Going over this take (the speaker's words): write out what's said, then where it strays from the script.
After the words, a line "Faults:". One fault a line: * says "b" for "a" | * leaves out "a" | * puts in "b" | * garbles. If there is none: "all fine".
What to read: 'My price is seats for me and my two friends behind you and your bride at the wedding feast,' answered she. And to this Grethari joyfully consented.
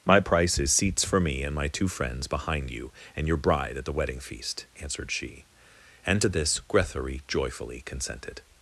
'My price is seats for me and my two friends behind you and your bride at the wedding feast,' answered she. And to this Grethari joyfully consented.
Faults:
all fine